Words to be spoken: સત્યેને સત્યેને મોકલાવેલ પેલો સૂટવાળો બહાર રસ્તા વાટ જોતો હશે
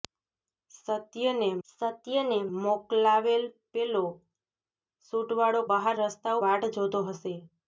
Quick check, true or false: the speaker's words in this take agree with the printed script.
true